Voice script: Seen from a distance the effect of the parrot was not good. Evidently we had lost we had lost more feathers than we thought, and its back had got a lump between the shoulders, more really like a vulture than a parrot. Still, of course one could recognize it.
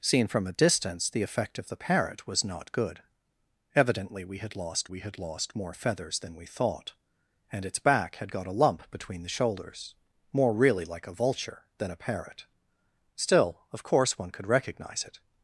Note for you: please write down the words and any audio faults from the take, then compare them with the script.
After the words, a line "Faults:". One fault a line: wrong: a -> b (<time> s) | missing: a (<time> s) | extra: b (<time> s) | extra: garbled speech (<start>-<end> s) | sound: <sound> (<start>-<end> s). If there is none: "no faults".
Seen from a distance the effect of the parrot was not good. Evidently we had lost we had lost more feathers than we thought, and its back had got a lump between the shoulders, more really like a vulture than a parrot. Still, of course one could recognize it.
Faults:
no faults